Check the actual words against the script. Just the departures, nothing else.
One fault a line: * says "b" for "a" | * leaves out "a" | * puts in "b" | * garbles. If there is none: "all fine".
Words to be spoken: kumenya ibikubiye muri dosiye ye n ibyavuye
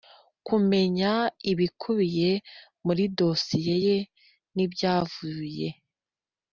all fine